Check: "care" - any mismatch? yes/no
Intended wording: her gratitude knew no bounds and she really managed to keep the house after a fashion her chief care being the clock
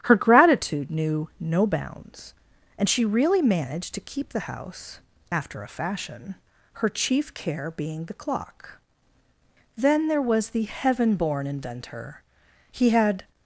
no